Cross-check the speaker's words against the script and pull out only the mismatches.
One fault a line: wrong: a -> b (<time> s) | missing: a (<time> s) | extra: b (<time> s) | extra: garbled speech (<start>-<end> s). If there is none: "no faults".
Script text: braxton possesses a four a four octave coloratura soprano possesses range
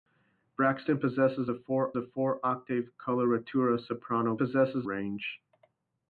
no faults